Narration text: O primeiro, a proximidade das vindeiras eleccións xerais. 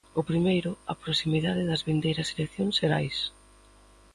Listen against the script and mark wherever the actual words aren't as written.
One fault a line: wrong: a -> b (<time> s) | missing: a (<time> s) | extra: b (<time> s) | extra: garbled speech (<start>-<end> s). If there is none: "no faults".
no faults